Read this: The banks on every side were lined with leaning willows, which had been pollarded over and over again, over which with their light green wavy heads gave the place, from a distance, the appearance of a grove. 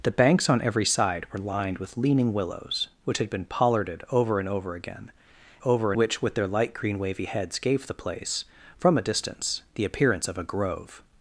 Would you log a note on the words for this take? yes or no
no